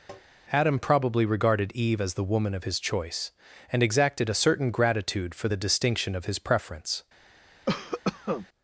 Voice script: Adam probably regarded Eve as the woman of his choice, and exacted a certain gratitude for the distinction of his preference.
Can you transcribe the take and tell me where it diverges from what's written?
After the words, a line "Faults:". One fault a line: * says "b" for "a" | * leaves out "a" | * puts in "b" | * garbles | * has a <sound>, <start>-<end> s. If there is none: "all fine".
Adam probably regarded Eve as the woman of his choice, and exacted a certain gratitude for the distinction of his preference.
Faults:
* has a tap, 0.1-0.3 s
* has a cough, 7.7-8.5 s